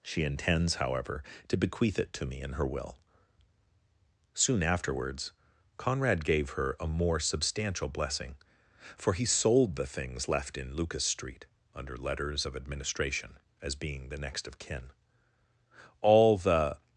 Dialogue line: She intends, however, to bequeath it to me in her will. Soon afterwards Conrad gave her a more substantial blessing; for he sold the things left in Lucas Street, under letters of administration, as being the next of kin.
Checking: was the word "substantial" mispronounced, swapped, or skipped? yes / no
no